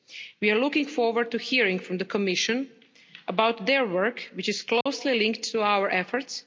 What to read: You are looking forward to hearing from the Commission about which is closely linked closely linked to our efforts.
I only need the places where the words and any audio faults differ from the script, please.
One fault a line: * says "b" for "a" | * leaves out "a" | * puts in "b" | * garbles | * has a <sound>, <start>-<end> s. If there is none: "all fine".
* says "We" for "You"
* puts in "their work"
* has a dropout, 4.8-4.9 s
* leaves out "closely linked"